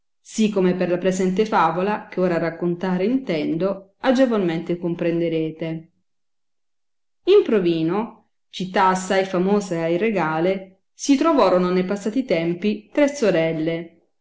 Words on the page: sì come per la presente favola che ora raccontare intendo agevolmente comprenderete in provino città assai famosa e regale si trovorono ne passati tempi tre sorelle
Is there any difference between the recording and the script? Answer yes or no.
no